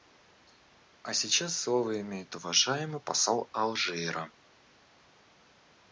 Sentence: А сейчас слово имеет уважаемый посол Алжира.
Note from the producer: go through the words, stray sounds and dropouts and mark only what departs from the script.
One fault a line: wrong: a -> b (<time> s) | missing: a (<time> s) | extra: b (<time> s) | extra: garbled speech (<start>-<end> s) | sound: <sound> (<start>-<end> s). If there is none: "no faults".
no faults